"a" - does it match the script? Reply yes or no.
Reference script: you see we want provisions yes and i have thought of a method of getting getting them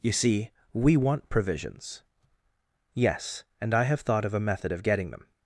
yes